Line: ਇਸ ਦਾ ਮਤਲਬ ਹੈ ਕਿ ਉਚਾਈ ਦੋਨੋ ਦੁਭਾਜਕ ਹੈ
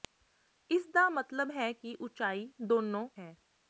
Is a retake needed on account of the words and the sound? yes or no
yes